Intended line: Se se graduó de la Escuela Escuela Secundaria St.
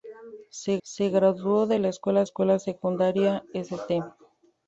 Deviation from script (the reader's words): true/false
false